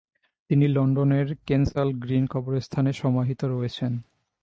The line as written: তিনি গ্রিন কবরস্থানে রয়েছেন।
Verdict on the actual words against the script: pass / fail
fail